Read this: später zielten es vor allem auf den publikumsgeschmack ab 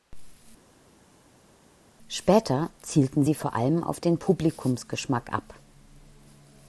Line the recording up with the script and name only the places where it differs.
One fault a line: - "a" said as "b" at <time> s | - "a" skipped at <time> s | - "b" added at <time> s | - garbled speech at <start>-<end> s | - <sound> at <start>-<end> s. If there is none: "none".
- "es" said as "sie" at 3.2 s